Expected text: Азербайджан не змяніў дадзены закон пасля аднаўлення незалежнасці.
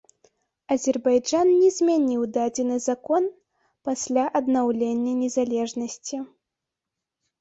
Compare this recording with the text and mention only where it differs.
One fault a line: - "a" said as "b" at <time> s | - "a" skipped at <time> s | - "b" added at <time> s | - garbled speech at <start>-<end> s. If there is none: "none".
none